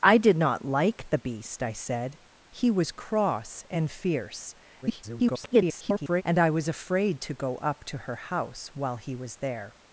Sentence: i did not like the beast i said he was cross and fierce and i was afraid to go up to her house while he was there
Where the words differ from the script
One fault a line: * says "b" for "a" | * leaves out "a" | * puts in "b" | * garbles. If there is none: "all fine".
* garbles